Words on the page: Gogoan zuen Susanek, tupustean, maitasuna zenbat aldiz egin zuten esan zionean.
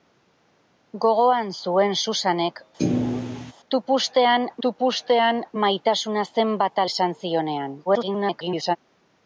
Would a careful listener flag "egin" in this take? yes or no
yes